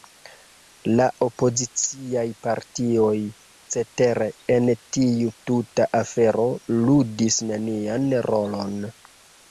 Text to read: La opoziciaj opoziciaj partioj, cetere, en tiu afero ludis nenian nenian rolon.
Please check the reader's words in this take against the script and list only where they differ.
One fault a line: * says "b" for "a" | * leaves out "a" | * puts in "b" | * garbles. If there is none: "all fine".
* leaves out "opoziciaj"
* puts in "tuta"
* leaves out "nenian"